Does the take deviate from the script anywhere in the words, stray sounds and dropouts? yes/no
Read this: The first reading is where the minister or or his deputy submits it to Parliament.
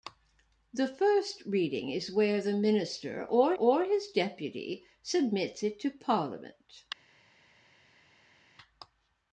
no